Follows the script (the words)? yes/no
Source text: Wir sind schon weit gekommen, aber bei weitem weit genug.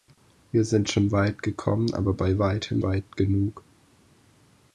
yes